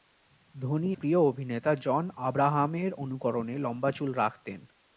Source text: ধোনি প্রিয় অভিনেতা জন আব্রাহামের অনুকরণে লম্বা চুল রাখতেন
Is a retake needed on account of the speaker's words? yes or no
no